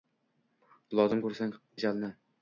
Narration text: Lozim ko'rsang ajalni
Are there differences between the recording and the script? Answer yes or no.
no